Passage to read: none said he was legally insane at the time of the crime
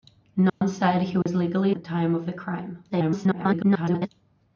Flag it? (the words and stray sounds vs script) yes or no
yes